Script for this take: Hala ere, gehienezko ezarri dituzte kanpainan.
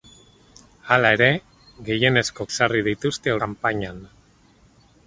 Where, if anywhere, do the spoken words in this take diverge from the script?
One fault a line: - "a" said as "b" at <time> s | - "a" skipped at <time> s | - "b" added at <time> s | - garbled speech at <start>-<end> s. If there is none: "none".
none